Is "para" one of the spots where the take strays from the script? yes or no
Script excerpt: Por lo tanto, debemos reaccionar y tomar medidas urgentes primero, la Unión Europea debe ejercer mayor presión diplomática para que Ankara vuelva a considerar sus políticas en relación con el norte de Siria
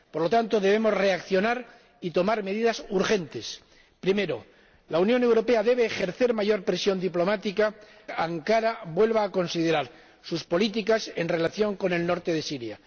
yes